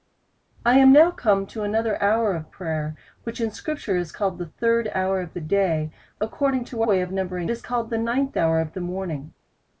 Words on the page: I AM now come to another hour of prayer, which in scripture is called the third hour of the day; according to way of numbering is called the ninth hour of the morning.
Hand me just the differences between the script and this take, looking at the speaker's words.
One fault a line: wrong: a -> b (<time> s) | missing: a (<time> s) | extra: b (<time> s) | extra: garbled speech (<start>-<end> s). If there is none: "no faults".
no faults